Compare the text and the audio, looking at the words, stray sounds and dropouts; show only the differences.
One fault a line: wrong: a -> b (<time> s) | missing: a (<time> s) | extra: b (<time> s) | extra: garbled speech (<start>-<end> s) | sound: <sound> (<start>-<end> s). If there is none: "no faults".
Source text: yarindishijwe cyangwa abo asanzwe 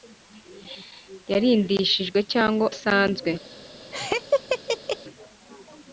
missing: abo (2.6 s)
sound: laugh (3.9-5.0 s)